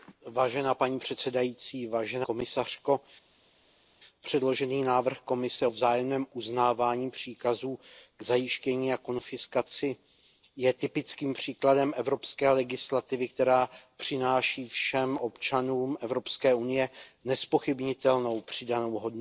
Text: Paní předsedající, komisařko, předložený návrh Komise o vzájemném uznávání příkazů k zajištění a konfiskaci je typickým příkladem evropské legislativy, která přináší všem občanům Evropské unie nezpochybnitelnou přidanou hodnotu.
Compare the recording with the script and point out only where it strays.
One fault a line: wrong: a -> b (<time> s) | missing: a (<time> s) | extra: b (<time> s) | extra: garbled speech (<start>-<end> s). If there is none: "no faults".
no faults